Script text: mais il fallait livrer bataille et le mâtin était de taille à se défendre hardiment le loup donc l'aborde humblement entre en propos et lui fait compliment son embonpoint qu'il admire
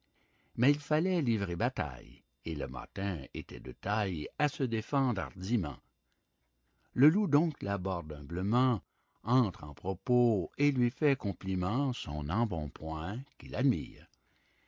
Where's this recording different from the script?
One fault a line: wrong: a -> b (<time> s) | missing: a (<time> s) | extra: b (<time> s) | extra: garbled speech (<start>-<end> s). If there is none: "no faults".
no faults